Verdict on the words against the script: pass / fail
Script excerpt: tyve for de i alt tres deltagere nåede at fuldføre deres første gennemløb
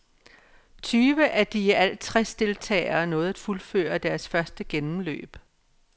fail